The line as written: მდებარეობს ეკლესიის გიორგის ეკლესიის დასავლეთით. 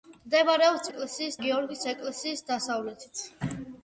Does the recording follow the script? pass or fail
pass